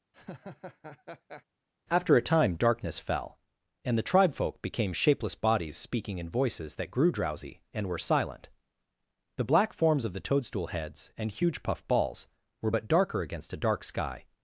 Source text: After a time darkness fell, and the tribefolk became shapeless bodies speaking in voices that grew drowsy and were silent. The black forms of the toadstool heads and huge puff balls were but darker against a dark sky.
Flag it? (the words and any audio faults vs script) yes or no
yes